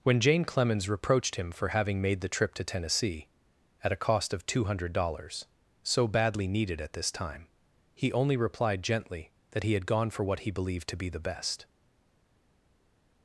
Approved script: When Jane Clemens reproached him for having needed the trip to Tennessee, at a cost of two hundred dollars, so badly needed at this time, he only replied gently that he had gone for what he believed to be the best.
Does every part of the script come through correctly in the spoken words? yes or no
no